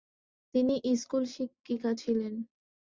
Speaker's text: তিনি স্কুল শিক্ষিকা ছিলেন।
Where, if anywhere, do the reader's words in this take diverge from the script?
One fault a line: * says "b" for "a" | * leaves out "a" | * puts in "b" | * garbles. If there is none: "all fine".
all fine